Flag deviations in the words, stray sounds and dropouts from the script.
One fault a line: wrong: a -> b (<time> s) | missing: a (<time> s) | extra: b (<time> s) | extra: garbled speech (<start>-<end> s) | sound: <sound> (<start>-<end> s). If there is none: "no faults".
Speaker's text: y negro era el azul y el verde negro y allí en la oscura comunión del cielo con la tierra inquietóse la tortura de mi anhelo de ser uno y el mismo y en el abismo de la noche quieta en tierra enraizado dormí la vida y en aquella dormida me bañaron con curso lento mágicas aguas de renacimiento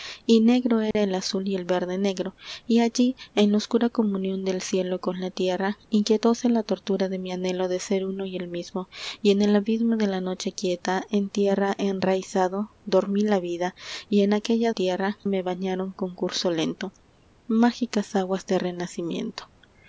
sound: dropout (0.9-0.9 s)
wrong: dormida -> tierra (14.7 s)